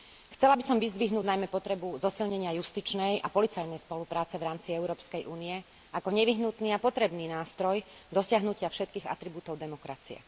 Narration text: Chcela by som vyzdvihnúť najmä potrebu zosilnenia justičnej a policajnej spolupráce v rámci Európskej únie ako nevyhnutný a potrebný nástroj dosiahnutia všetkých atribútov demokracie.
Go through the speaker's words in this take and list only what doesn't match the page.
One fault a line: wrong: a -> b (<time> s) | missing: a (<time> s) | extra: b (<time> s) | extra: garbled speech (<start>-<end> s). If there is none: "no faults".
no faults